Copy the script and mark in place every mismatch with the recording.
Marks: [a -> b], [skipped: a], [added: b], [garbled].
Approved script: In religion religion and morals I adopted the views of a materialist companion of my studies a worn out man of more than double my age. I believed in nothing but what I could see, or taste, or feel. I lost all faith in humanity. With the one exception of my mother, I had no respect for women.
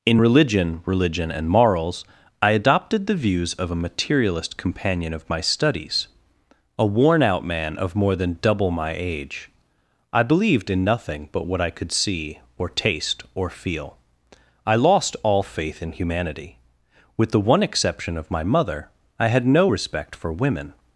In religion religion and morals I adopted the views of a materialist companion of my studies a worn out man of more than double my age. I believed in nothing but what I could see, or taste, or feel. I lost all faith in humanity. With the one exception of my mother, I had no respect for women.